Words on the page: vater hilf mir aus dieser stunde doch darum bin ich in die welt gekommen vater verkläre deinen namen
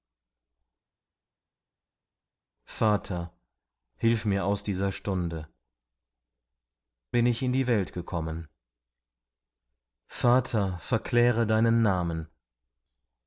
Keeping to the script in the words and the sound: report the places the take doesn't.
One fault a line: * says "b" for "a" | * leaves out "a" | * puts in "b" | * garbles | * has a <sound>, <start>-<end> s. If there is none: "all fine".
* leaves out "doch darum"